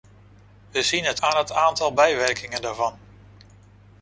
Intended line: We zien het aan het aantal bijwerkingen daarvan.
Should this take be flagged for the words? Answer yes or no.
no